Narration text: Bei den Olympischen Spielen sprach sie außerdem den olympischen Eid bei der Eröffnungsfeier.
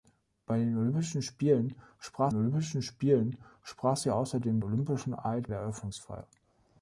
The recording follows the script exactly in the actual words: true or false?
false